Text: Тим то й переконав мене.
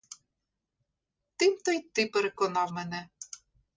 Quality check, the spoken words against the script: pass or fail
fail